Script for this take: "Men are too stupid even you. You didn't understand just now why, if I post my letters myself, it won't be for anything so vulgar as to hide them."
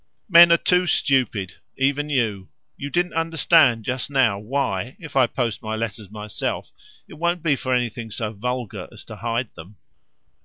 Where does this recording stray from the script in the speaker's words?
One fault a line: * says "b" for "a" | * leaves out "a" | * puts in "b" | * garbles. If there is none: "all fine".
all fine